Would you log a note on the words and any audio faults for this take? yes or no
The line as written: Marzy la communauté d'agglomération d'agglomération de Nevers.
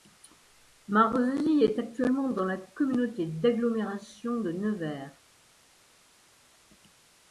yes